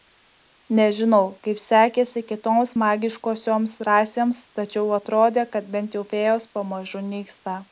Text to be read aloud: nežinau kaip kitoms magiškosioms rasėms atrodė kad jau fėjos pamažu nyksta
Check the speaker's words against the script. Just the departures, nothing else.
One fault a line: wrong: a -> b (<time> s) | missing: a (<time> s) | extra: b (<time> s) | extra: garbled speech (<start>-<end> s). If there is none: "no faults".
extra: sekėsi (1.6 s)
extra: tačiau (4.6 s)
extra: bent (5.8 s)